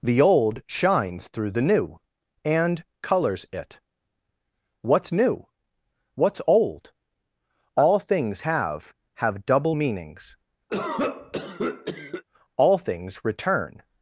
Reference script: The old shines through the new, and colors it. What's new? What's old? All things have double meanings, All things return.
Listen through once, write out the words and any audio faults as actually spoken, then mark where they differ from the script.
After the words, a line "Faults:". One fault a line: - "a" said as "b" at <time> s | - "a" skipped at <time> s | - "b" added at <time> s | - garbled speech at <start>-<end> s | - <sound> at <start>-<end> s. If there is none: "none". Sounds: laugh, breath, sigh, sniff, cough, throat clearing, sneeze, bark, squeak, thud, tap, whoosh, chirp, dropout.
The old shines through the new, and colors it. What's new? What's old? All things have have double meanings, All things return.
Faults:
- "have" added at 9.2 s
- cough at 10.7-12.2 s